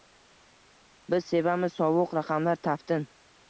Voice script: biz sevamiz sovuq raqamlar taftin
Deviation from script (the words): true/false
false